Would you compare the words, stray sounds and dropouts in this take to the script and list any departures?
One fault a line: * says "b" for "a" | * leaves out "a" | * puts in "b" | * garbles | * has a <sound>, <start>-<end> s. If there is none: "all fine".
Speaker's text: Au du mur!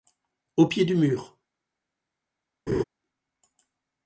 * puts in "pied"
* has a laugh, 2.7-2.8 s